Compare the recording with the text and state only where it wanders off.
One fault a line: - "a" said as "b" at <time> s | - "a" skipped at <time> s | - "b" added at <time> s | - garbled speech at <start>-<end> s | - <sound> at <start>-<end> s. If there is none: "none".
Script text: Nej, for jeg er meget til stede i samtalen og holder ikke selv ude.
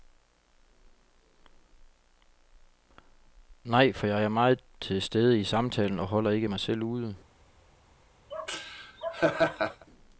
- "mig" added at 6.4 s
- laugh at 8.3-9.9 s